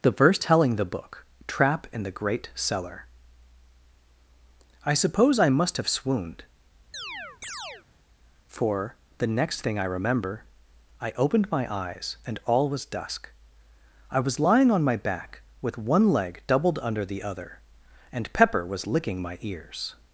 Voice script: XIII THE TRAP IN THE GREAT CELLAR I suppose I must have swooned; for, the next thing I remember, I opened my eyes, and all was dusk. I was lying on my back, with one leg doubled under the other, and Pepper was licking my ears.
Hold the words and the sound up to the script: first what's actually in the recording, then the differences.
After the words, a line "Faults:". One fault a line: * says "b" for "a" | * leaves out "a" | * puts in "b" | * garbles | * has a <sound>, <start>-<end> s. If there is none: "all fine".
The verse telling THE book TRAP IN THE GREAT CELLAR I suppose I must have swooned; for, the next thing I remember, I opened my eyes, and all was dusk. I was lying on my back, with one leg doubled under the other, and Pepper was licking my ears.
Faults:
* says "The verse telling" for "XIII"
* puts in "book"
* has a chirp, 6.9-7.9 s